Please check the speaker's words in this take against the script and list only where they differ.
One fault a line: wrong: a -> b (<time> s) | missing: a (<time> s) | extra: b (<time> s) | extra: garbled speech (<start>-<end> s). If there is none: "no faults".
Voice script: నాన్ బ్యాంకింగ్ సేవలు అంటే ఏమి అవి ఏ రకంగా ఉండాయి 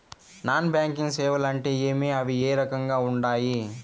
no faults